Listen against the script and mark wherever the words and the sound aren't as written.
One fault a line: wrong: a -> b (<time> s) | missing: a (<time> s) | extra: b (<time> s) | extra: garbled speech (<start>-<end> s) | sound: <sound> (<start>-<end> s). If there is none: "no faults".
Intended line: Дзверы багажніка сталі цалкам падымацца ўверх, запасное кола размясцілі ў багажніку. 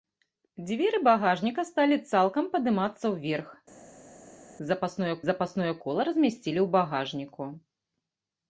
extra: запасное (5.3 s)